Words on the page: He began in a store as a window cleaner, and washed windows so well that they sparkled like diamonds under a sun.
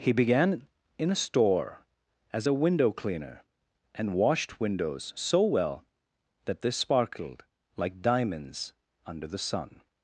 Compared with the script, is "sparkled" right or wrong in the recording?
right